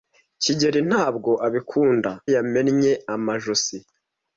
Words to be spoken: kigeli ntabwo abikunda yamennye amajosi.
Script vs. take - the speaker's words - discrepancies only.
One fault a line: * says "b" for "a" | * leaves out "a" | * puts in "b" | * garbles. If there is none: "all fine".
all fine